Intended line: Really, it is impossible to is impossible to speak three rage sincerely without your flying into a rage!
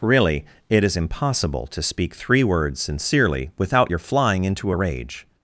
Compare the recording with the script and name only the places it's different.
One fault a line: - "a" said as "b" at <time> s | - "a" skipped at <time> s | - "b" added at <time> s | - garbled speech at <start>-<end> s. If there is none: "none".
- "is impossible to" skipped at 1.8 s
- "rage" said as "words" at 2.4 s